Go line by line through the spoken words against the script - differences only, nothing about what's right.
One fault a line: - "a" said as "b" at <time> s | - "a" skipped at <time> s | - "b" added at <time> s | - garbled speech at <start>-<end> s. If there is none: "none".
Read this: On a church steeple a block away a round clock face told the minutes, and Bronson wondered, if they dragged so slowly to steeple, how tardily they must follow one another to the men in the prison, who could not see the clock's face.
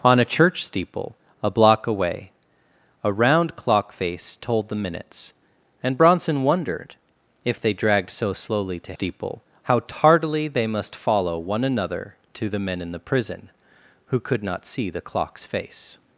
none